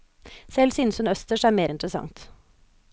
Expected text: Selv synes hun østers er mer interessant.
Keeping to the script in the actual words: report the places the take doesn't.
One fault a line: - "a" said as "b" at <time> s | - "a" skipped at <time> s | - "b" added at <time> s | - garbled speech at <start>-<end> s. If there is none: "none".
none